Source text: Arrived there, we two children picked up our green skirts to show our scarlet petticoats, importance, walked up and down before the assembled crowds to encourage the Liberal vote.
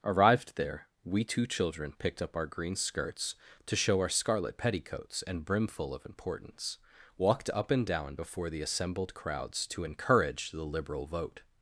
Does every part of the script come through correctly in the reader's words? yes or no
no